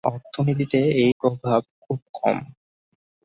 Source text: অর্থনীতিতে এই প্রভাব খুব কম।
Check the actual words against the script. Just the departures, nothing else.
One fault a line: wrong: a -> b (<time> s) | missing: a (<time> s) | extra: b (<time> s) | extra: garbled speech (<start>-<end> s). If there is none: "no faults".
no faults